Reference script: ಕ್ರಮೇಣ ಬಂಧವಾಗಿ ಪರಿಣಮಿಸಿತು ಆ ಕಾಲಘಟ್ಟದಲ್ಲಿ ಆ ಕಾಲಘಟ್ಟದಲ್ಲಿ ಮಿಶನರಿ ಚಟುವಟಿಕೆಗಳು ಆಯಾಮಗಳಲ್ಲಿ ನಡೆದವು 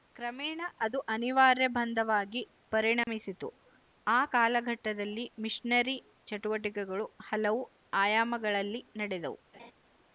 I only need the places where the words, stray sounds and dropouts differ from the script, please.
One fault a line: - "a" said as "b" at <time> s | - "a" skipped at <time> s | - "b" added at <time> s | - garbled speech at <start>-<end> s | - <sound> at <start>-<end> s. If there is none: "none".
- "ಅದು ಅನಿವಾರ್ಯ" added at 0.8 s
- dropout at 3.0-3.1 s
- "ಆ ಕಾಲಘಟ್ಟದಲ್ಲಿ" skipped at 5.3 s
- "ಹಲವು" added at 7.3 s
- laugh at 9.5-9.7 s